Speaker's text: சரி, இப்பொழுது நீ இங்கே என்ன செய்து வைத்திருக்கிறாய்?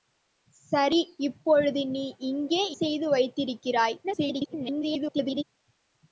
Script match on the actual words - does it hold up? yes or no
no